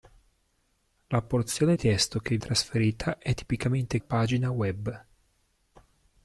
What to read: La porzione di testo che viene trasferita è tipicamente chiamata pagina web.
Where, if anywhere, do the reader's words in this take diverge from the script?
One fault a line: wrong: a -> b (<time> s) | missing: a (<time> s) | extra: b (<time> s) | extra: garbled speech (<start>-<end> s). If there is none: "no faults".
missing: di (1.8 s)
missing: viene (2.4 s)
missing: chiamata (4.0 s)